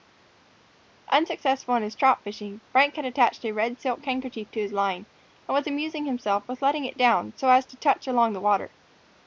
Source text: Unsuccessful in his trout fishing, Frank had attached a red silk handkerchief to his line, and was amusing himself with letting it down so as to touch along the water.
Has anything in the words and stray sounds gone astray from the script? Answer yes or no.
no